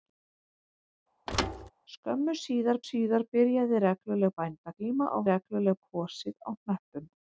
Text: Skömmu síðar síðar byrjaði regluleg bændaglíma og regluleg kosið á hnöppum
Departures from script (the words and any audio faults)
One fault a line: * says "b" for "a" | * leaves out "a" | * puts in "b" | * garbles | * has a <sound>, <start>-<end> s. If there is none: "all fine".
* has a thud, 1.3-1.7 s